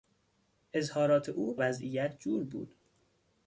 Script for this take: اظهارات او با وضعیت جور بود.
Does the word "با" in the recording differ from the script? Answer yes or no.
yes